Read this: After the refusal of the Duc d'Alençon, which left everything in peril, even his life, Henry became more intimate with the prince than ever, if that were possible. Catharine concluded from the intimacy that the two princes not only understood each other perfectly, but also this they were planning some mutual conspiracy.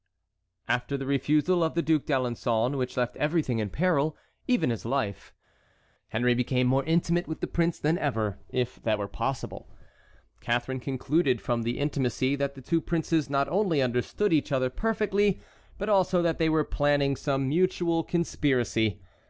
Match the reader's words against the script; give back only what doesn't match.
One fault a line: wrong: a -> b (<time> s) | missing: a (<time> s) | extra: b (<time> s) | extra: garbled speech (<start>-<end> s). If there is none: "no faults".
wrong: this -> that (16.2 s)